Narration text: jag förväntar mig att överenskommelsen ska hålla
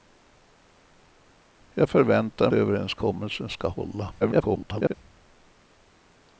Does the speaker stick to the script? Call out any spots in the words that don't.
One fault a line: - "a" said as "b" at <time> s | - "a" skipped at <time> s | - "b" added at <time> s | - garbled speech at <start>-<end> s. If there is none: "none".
- "mig att" skipped at 2.5 s
- garbled speech at 4.2-4.9 s